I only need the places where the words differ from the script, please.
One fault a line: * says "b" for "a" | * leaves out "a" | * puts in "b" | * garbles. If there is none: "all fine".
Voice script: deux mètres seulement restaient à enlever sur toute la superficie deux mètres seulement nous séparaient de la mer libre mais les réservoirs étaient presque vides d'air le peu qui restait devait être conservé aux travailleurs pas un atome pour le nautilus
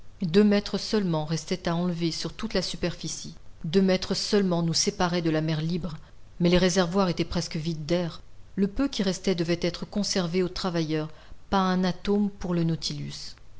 all fine